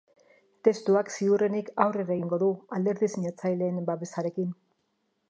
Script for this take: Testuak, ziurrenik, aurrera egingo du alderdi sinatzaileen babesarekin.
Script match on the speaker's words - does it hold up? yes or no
yes